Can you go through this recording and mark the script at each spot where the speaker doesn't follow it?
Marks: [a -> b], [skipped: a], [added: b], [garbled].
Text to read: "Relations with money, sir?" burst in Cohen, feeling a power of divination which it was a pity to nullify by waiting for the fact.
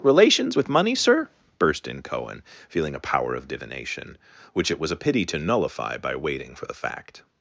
"Relations with money, sir?" burst in Cohen, feeling a power of divination which it was a pity to nullify by waiting for the fact.